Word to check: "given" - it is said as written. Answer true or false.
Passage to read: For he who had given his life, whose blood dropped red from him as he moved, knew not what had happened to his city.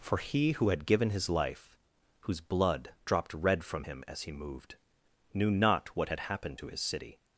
true